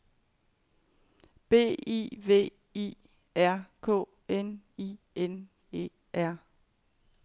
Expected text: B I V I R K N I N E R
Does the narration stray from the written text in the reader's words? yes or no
no